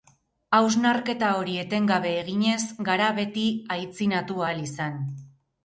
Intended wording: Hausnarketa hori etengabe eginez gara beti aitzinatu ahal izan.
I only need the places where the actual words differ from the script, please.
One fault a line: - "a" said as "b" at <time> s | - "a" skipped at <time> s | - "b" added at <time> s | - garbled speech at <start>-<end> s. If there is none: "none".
none